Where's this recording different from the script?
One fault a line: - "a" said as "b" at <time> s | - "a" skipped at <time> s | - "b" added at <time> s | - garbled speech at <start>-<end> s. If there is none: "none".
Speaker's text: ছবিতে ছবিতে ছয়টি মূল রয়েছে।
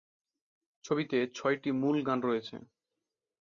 - "ছবিতে" skipped at 1.2 s
- "গান" added at 2.1 s